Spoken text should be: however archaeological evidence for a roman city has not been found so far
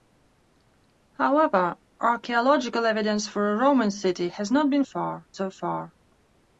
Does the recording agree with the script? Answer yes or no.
no